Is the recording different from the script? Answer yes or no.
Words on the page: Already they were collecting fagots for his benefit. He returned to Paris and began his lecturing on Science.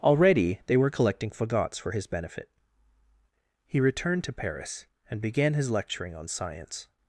no